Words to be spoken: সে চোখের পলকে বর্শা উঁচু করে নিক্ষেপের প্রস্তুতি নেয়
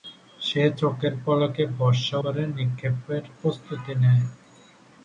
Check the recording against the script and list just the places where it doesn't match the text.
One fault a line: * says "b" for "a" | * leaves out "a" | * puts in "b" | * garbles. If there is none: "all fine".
* leaves out "উঁচু"